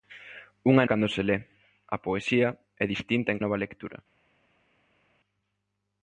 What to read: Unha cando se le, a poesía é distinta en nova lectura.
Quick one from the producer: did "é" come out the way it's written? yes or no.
yes